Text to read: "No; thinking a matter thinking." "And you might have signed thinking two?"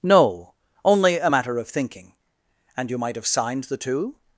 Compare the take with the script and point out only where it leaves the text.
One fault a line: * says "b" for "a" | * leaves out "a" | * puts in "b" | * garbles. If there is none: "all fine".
* says "only" for "thinking"
* puts in "of"
* says "the" for "thinking"